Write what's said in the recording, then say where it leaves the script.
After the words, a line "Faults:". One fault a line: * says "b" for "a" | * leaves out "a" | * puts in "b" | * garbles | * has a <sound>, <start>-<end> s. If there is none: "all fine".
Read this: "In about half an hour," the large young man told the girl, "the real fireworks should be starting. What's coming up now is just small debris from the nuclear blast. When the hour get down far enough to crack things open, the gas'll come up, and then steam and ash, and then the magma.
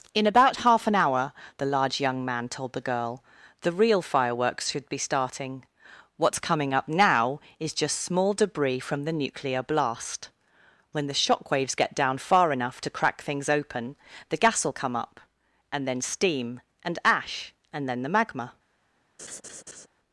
"In about half an hour," the large young man told the girl, "the real fireworks should be starting. What's coming up now is just small debris from the nuclear blast. When the shockwaves get down far enough to crack things open, the gas'll come up, and then steam and ash, and then the magma.
Faults:
* says "shockwaves" for "hour"
* has a laugh, 19.2-19.9 s